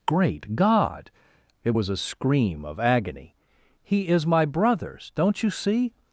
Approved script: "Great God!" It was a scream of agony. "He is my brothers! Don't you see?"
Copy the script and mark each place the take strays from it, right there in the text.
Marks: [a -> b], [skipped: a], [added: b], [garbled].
"Great God!" It was a scream of agony. "He is my brothers! Don't you see?"